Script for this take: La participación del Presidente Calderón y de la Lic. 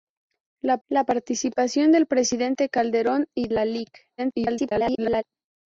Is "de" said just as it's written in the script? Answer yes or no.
no